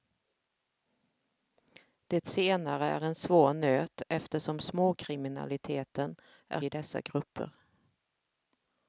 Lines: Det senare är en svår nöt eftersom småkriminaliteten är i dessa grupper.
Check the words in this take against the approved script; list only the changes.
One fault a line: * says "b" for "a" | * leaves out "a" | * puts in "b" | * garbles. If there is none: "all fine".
all fine